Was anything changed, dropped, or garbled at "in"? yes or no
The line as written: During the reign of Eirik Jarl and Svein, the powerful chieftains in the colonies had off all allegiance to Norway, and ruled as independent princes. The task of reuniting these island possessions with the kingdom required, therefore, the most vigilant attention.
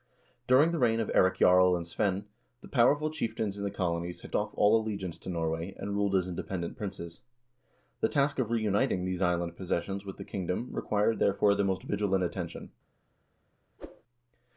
no